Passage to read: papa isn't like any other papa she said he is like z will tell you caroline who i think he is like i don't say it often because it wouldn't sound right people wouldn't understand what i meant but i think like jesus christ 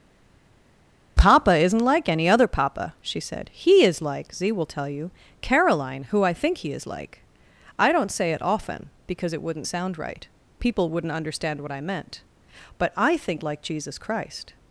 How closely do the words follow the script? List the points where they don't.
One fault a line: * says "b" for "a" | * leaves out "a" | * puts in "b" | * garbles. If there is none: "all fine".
all fine